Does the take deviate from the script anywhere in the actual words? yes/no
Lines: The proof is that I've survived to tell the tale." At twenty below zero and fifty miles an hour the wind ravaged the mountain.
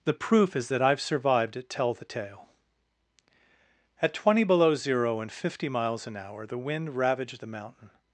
yes